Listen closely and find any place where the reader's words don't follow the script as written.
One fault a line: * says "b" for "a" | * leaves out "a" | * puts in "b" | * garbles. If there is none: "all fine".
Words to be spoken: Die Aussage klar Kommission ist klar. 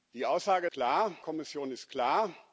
all fine